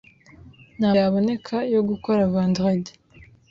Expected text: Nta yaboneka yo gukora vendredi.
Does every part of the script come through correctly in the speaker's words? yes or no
yes